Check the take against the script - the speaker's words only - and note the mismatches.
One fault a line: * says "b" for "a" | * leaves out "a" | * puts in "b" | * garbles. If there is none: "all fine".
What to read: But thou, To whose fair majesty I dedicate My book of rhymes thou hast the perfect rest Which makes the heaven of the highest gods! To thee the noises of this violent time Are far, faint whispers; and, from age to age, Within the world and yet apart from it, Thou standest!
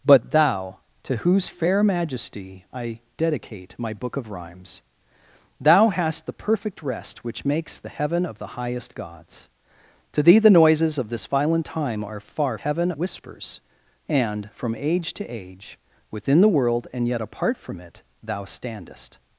* says "heaven" for "faint"